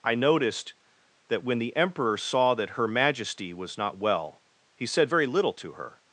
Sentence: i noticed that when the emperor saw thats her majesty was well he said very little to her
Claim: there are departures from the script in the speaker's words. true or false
true